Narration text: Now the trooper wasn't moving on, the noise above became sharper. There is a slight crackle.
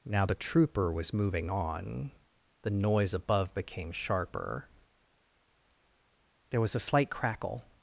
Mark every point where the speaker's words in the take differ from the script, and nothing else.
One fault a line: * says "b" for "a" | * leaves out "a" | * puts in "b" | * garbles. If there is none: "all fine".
* says "was" for "wasn't"
* says "was" for "is"